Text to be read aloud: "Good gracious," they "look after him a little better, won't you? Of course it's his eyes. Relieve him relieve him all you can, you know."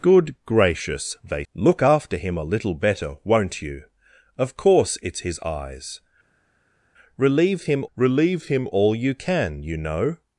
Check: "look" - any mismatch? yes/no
no